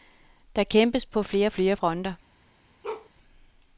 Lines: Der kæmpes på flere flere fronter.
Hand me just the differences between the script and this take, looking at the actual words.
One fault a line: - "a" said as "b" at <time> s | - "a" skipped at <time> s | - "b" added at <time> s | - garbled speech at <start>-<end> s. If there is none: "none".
none